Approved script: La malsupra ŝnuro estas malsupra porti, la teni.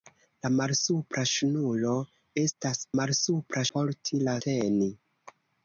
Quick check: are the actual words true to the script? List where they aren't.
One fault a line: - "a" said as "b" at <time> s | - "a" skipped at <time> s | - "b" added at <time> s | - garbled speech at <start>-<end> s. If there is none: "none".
none